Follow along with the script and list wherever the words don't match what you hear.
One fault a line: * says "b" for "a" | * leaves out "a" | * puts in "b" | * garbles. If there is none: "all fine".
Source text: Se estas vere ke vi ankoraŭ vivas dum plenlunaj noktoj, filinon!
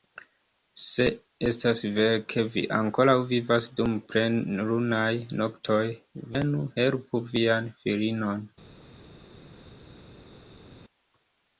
* puts in "venu helpu vian"